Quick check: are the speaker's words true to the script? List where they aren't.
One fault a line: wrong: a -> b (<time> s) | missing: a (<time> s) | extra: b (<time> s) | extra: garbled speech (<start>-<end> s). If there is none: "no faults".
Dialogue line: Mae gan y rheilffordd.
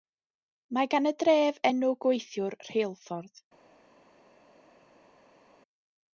extra: dref enw gweithiwr (1.2 s)